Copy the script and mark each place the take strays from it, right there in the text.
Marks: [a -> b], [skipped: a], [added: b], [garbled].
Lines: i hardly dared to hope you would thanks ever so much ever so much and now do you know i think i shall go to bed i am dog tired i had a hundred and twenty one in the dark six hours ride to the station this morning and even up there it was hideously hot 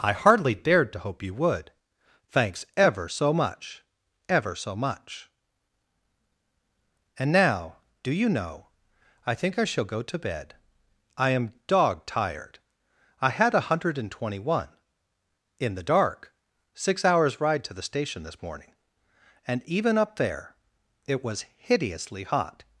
i hardly dared to hope you would thanks ever so much ever so much and now do you know i think i shall go to bed i am dog tired i had a hundred and twenty one in the dark six hours ride to the station this morning and even up there it was hideously hot